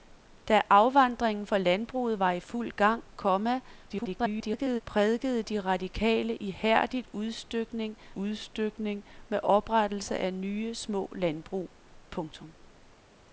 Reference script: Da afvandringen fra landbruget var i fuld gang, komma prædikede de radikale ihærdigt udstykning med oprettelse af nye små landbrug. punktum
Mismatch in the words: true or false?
true